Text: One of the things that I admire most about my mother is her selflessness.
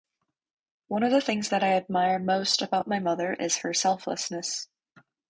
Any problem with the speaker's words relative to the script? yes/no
no